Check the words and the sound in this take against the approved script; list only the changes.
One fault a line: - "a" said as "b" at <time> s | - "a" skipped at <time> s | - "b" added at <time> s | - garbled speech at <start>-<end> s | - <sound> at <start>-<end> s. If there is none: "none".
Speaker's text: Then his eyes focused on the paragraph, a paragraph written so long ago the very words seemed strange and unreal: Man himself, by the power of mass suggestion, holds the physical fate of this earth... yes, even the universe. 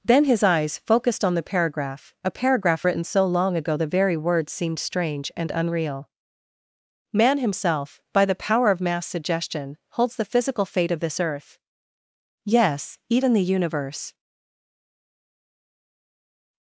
none